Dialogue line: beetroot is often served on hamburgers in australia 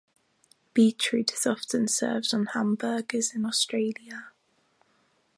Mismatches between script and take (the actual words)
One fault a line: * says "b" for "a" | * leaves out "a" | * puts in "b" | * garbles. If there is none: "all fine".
all fine